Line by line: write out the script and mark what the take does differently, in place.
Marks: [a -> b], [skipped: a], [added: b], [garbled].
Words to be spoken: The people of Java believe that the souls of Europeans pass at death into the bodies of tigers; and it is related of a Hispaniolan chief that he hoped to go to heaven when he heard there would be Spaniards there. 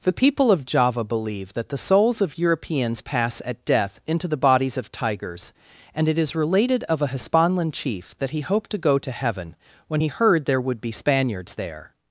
The people of Java believe that the souls of Europeans pass at death into the bodies of tigers; and it is related of a Hispaniolan chief that he hoped to go to heaven when he heard there would be Spaniards there.